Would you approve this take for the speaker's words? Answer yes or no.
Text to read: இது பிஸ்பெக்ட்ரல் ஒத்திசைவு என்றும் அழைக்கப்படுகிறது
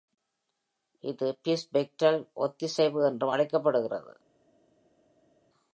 yes